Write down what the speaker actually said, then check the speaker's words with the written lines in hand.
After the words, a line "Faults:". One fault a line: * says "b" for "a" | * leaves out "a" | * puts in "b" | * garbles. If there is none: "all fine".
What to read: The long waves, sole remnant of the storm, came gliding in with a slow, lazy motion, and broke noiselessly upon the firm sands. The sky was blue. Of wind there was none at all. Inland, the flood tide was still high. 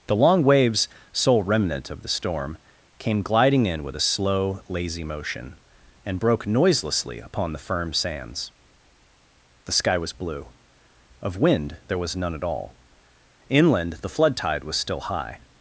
The long waves, sole remnant of the storm, came gliding in with a slow, lazy motion, and broke noiselessly upon the firm sands. The sky was blue. Of wind there was none at all. Inland, the flood tide was still high.
Faults:
all fine